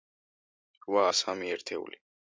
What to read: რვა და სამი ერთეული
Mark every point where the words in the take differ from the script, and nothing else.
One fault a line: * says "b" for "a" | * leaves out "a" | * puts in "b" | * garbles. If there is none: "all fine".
all fine